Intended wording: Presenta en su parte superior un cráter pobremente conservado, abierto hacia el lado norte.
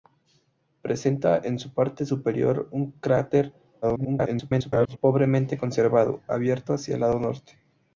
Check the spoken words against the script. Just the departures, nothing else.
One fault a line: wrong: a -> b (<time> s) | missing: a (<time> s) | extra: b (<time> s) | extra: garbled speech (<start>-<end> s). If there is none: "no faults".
extra: garbled speech (3.8-5.0 s)